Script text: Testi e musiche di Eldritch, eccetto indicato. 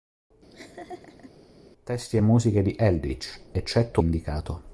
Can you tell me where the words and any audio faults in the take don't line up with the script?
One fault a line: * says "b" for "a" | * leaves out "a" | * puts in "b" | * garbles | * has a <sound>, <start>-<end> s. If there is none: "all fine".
* has a laugh, 0.5-1.3 s